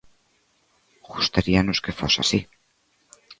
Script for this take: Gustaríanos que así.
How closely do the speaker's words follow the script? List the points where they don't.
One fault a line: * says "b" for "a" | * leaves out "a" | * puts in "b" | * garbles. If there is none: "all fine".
* puts in "fose"